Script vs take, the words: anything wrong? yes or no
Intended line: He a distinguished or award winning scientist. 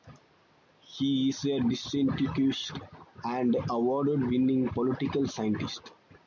yes